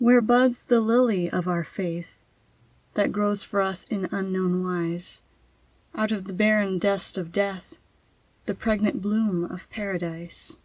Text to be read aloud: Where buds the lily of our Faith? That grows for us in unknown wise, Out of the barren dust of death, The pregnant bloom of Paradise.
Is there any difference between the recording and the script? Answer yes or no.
no